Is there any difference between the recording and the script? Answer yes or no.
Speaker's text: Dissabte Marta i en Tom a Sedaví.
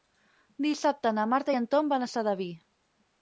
yes